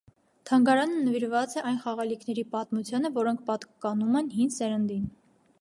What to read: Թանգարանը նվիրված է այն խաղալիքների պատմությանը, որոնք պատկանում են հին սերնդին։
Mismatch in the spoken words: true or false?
false